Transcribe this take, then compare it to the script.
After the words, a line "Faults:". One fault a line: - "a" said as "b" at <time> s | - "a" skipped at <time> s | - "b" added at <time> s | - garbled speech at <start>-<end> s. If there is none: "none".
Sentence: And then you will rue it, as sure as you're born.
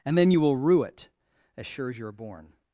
And then you will rue it, as sure as you're born.
Faults:
none